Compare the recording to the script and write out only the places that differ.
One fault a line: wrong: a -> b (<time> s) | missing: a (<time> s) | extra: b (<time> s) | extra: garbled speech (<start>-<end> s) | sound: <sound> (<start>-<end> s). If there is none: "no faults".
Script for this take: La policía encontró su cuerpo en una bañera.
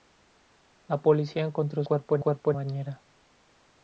missing: su (1.8 s)
wrong: una -> cuerpo (2.2 s)